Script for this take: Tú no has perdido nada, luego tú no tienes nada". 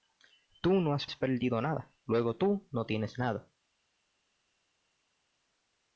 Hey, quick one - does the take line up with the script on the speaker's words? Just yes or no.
no